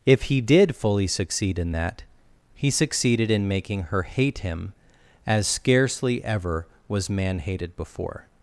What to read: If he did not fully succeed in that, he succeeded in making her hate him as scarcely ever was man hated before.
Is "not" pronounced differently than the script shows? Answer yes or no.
yes